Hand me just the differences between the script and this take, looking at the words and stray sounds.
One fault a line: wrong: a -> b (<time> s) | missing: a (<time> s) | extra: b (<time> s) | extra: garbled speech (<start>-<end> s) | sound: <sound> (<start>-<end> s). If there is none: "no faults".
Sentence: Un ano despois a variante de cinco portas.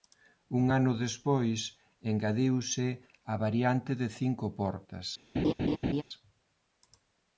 extra: engadiuse (2.1 s)
sound: laugh (5.3-6.0 s)